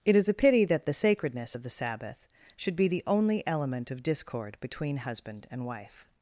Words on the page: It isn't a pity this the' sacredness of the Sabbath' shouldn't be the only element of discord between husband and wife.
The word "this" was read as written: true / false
false